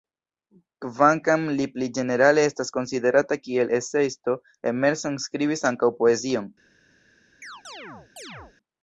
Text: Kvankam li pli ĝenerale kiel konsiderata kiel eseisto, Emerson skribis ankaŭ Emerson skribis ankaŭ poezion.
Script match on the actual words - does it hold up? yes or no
no